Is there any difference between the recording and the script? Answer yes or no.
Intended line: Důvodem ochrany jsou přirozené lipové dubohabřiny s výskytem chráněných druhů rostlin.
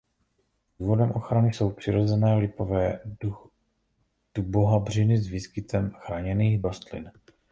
yes